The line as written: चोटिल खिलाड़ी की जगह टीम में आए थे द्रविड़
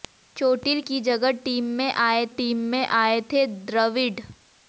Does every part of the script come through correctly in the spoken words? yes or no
no